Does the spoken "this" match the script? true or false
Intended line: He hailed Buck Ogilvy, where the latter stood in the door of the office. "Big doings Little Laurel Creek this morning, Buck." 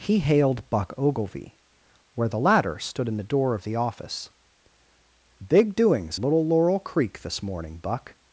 true